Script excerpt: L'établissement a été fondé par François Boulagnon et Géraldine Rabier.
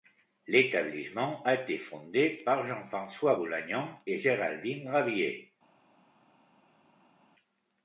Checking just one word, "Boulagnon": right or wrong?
right